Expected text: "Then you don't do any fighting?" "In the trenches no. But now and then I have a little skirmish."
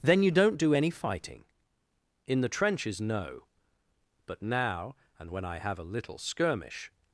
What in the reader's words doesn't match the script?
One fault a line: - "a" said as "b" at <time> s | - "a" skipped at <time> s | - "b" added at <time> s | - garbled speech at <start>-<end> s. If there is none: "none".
- "then" said as "when" at 5.3 s